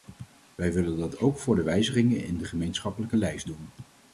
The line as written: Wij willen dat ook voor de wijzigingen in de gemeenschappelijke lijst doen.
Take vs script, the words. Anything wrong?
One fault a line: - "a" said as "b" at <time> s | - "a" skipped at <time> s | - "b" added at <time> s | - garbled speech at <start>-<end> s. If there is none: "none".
none